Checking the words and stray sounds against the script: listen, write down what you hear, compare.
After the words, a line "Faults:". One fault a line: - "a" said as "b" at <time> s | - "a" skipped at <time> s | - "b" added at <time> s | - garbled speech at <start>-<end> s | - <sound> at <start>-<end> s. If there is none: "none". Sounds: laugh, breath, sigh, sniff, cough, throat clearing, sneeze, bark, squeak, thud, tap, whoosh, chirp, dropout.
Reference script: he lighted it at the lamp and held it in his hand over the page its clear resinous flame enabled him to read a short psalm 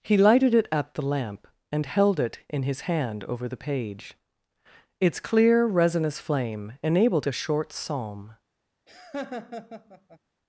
he lighted it at the lamp and held it in his hand over the page its clear resinous flame enabled a short psalm
Faults:
- "him to read" skipped at 7.3 s
- laugh at 8.9-10.2 s